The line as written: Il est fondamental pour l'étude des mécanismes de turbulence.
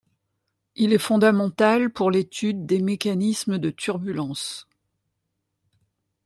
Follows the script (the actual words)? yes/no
yes